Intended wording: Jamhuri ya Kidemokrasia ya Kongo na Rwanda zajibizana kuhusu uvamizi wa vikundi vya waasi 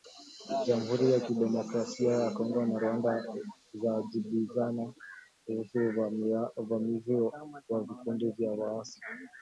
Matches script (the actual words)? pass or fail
pass